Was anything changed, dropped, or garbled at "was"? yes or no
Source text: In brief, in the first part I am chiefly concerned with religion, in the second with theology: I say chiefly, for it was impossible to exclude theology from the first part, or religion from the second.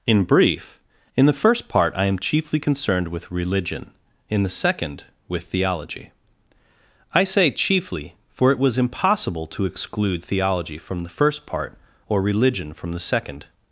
no